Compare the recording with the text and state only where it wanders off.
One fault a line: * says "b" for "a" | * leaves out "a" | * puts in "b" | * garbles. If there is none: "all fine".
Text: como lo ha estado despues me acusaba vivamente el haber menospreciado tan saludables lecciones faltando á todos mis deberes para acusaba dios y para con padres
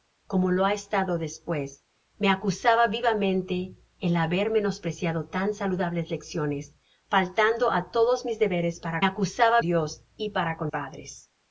all fine